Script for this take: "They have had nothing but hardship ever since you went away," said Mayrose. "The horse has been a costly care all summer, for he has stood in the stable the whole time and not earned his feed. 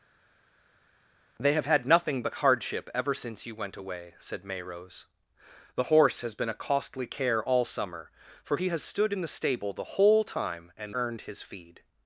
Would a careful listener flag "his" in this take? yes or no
no